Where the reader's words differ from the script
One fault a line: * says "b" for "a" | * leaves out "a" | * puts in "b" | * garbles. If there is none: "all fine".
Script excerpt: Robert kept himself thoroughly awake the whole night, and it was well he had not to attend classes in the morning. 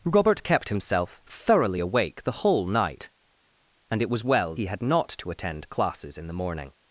all fine